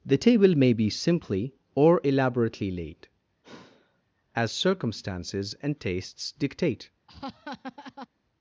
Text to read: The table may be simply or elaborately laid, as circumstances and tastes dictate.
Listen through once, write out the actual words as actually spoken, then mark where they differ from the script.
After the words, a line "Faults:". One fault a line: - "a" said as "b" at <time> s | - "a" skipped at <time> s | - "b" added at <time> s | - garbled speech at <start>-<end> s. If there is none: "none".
The table may be simply or elaborately laid, as circumstances and tastes dictate.
Faults:
none